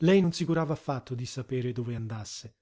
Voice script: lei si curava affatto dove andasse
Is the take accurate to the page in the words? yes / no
no